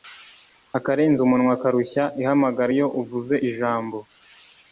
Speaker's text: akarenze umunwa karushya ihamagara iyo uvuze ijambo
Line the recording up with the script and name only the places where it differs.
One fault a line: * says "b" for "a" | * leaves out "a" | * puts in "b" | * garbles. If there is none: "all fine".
all fine